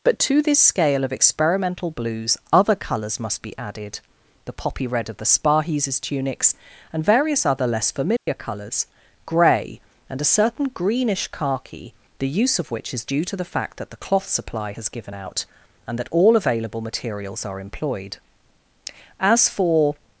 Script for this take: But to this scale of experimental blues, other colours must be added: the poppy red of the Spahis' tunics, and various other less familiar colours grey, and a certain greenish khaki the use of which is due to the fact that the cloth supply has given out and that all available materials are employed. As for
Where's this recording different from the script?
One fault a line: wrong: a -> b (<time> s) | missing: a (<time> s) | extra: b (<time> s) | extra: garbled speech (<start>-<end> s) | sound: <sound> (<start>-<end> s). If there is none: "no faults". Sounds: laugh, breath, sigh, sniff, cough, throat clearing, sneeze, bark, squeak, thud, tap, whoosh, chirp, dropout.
sound: dropout (8.2-8.3 s)